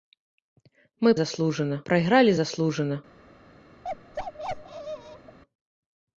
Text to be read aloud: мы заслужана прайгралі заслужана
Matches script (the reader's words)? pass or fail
pass